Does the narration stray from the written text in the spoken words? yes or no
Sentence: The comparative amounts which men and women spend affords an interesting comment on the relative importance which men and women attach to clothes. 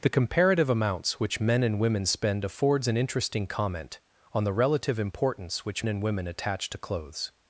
yes